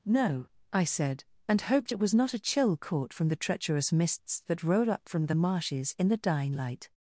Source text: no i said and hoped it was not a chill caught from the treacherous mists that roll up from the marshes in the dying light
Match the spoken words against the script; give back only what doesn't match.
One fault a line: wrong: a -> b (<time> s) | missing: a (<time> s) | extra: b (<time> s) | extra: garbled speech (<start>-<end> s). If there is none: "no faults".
no faults